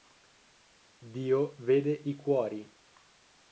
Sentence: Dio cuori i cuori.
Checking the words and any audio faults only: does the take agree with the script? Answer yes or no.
no